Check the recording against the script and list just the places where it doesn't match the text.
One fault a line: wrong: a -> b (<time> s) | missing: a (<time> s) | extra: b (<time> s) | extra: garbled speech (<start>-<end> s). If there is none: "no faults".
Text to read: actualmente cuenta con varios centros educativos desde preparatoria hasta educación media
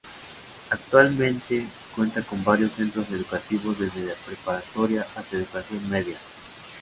no faults